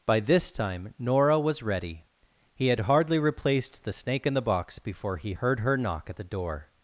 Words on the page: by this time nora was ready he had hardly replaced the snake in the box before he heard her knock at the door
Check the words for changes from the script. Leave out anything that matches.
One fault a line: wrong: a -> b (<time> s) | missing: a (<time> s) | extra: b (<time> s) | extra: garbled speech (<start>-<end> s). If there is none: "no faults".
no faults